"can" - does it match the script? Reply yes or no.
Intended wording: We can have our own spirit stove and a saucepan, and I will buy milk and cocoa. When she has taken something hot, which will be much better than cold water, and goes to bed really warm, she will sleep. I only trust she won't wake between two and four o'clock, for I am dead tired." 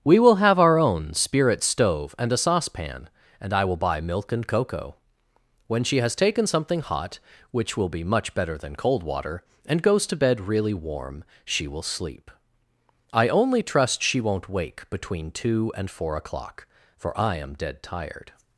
no